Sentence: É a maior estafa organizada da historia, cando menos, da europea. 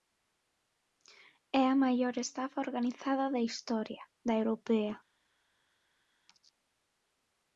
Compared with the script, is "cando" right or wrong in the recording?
wrong